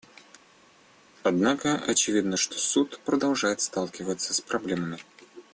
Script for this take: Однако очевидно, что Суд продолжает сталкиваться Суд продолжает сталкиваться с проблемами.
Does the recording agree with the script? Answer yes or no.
no